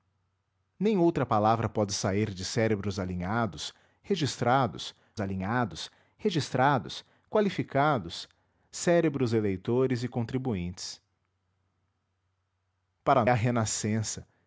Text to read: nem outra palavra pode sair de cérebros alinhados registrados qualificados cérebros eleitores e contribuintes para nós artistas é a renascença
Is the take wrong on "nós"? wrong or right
wrong